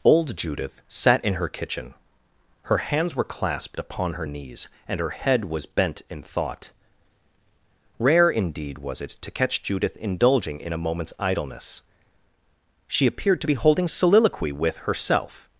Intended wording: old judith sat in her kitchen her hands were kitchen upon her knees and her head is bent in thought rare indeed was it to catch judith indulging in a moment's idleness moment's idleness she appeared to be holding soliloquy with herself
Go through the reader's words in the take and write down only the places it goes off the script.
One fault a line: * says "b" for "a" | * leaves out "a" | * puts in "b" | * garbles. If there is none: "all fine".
* says "clasped" for "kitchen"
* says "was" for "is"
* leaves out "moment's idleness"